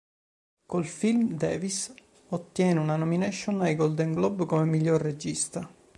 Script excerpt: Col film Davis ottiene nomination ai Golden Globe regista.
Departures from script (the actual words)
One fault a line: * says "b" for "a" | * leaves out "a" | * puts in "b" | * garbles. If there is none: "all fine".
* puts in "una"
* puts in "come miglior"